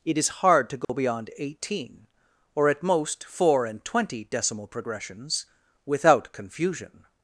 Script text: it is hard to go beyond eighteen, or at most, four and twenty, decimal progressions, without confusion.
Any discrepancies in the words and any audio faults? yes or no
yes